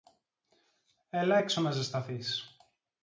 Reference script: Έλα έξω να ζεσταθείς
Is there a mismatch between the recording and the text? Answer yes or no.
no